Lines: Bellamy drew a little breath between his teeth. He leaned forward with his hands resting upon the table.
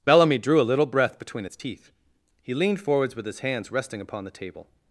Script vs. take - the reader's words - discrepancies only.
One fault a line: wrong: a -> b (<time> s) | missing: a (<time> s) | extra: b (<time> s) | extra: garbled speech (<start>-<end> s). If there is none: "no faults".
wrong: his -> its (1.4 s)
wrong: forward -> forwards (2.8 s)